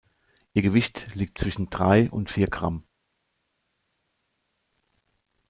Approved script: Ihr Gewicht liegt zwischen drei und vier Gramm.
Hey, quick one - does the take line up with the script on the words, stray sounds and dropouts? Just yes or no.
yes